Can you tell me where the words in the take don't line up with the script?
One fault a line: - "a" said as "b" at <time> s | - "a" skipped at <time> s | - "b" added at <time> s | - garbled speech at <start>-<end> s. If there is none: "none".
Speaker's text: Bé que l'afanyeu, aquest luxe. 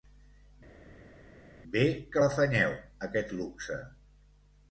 none